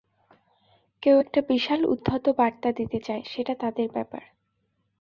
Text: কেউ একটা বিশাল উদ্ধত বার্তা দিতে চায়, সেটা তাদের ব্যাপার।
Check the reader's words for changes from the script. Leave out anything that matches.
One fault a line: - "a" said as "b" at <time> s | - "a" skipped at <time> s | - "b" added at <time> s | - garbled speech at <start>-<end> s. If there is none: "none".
none